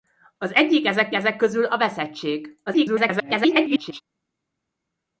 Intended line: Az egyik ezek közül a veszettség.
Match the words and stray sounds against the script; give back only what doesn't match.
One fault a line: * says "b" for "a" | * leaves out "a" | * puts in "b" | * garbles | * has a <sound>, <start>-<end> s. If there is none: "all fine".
* puts in "ezek"
* garbles